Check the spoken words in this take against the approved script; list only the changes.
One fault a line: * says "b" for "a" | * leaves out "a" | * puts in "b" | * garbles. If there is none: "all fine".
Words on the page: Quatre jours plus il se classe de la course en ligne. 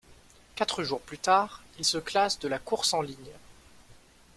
* puts in "tard"